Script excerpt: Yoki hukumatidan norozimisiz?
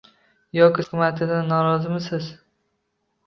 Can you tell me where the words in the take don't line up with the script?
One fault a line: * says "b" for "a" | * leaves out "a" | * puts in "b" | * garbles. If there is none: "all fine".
all fine